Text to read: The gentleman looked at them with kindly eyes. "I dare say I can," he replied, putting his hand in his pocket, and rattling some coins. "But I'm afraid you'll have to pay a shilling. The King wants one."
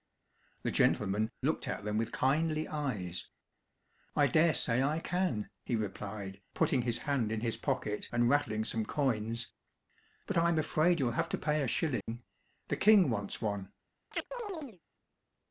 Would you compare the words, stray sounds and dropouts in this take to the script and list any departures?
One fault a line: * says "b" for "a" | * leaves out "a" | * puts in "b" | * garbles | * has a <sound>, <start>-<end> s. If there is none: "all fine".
* has a dropout, 12.0-12.1 s
* has a chirp, 14.1-14.8 s